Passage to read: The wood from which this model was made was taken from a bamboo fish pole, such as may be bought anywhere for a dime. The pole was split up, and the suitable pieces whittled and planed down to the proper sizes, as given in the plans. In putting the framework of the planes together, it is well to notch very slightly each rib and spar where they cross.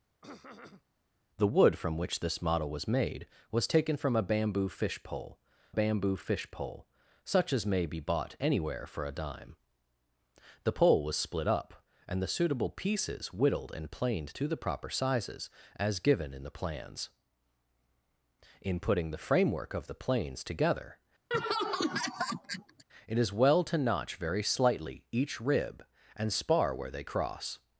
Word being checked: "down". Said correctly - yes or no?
no